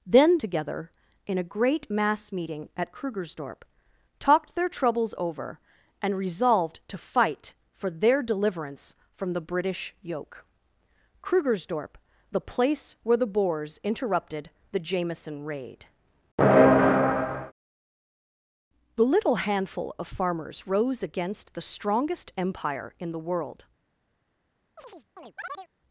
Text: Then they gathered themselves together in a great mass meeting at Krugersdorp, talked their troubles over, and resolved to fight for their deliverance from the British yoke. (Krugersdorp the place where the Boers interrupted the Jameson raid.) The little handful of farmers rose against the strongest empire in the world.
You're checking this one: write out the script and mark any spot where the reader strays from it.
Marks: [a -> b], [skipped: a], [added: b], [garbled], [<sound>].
Then [skipped: they gathered themselves] together in a great mass meeting at Krugersdorp, talked their troubles over, and resolved to fight for their deliverance from the British yoke. (Krugersdorp the place where the Boers interrupted the Jameson raid.) The little handful of farmers rose against the strongest empire in the world. [chirp]